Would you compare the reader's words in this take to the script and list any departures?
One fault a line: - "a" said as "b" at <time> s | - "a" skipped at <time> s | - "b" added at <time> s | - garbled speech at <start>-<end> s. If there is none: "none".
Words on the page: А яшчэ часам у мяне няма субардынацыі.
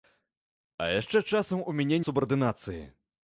- "няма" skipped at 2.0 s